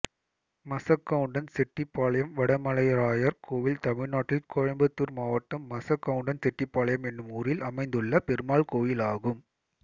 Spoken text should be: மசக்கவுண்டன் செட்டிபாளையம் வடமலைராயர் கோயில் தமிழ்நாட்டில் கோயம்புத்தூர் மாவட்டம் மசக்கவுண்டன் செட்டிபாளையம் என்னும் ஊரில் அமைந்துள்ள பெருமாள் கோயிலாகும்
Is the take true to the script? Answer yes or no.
yes